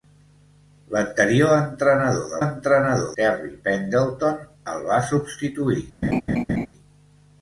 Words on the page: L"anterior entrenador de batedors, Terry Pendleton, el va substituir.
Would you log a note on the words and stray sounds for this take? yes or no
yes